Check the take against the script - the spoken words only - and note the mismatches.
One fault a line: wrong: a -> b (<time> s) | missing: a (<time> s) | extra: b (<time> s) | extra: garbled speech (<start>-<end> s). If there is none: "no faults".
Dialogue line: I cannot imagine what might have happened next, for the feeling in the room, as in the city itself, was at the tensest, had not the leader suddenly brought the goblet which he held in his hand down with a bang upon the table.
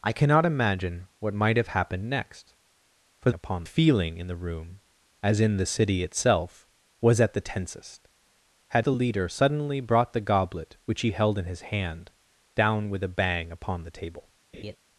wrong: the -> upon (3.3 s)
missing: not (8.9 s)